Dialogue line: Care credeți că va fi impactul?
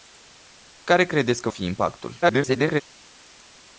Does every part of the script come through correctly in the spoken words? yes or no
no